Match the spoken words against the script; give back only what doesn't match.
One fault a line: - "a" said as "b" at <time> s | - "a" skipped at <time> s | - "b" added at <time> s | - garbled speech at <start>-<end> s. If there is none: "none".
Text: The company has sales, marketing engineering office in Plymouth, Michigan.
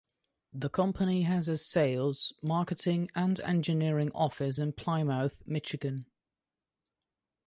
- "a" added at 1.5 s
- "and" added at 3.1 s